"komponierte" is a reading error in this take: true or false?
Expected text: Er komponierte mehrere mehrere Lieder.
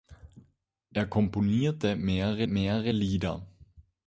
false